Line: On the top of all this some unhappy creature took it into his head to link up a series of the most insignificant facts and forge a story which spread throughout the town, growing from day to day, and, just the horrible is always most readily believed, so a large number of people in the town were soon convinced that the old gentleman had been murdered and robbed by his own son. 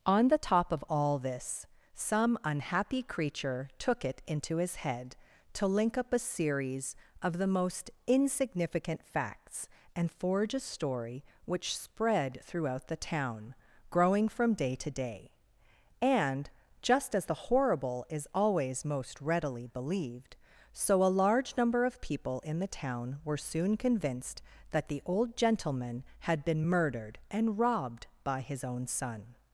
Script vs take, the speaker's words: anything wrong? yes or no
yes